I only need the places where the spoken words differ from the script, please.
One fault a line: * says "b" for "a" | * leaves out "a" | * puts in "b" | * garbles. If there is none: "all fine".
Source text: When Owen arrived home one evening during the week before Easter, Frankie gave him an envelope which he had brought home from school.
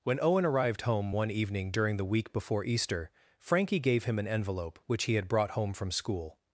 all fine